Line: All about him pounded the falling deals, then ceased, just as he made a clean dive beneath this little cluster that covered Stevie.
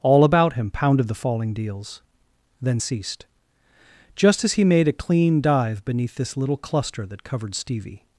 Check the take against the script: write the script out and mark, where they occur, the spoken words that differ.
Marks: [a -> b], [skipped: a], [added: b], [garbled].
All about him pounded the falling deals, then ceased, just as he made a clean dive beneath this little cluster that covered Stevie.